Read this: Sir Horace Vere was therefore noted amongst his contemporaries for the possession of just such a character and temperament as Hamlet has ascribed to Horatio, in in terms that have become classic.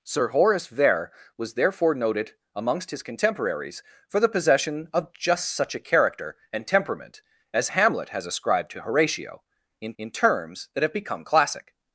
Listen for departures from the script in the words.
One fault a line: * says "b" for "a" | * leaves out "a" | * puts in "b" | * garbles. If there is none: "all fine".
all fine